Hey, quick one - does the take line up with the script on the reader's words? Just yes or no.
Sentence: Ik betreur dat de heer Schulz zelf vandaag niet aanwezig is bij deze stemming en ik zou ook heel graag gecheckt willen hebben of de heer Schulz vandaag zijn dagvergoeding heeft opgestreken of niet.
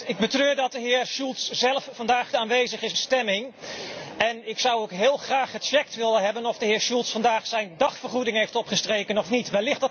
no